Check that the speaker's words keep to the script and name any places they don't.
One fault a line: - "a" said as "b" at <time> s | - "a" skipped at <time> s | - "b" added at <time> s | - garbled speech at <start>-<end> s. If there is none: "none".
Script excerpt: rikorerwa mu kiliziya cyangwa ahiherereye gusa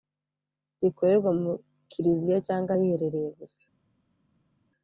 none